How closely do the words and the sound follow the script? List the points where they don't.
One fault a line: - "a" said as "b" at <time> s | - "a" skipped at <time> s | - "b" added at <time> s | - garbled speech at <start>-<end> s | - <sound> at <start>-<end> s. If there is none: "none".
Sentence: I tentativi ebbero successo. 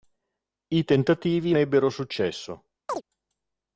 - chirp at 2.9-3.0 s